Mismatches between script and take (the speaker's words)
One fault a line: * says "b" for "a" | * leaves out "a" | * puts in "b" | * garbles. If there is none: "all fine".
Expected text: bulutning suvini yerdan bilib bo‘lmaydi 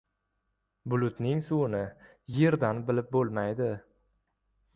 all fine